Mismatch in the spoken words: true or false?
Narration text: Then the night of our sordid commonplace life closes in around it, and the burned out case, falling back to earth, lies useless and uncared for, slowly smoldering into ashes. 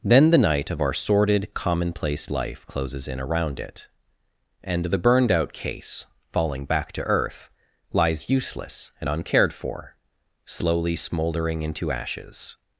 false